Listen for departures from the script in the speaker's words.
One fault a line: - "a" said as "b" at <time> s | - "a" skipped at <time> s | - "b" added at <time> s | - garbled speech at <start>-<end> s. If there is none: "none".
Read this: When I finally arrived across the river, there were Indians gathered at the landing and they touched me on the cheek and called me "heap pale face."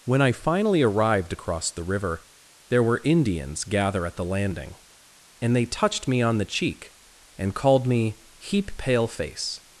- "gathered" said as "gather" at 3.6 s